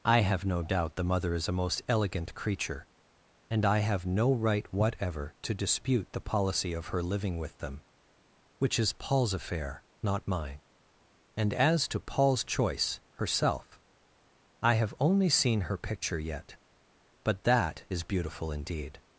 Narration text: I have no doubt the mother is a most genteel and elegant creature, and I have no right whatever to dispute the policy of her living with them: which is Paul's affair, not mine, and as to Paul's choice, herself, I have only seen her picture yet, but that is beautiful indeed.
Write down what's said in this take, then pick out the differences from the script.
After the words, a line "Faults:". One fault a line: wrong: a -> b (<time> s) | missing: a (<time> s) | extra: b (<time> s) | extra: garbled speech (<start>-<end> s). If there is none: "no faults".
I have no doubt the mother is a most elegant creature, and I have no right whatever to dispute the policy of her living with them: which is Paul's affair, not mine, and as to Paul's choice, herself, I have only seen her picture yet, but that is beautiful indeed.
Faults:
missing: genteel and (1.8 s)